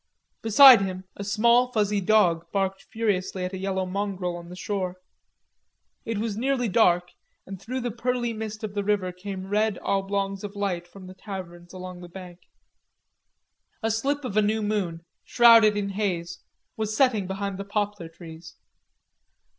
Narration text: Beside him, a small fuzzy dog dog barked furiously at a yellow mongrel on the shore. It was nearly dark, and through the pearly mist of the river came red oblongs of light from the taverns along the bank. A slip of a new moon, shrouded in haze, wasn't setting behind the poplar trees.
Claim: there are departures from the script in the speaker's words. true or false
true